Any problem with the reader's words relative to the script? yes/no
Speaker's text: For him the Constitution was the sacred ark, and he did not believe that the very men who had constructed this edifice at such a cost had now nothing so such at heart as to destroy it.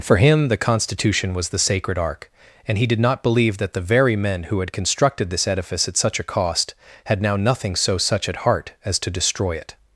no